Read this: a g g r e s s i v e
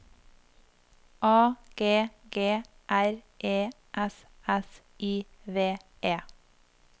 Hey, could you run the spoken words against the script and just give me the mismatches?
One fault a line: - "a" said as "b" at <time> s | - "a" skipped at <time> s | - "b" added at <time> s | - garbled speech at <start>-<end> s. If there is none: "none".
none